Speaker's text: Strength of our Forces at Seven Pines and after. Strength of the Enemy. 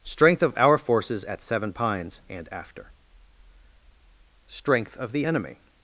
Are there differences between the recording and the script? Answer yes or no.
no